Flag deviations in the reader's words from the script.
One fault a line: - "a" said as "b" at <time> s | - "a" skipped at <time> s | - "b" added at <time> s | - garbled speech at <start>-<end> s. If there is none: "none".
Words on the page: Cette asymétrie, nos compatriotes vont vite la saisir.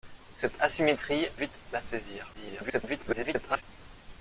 - "nos compatriotes vont" skipped at 1.3 s
- garbled speech at 2.3-3.6 s